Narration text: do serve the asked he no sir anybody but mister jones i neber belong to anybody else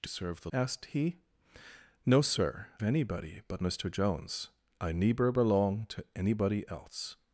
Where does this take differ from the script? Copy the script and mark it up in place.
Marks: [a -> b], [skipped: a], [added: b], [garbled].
do serve the asked he no sir anybody but mister jones i neber belong to anybody else